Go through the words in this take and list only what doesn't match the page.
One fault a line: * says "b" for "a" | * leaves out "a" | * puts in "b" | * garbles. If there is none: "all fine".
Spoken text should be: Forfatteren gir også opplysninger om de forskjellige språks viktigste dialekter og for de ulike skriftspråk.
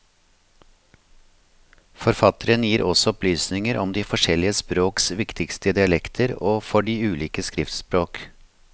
all fine